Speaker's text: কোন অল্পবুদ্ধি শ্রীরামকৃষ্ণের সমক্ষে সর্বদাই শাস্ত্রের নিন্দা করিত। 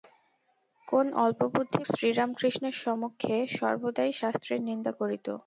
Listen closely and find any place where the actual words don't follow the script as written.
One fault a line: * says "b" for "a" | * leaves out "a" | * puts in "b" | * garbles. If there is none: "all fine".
all fine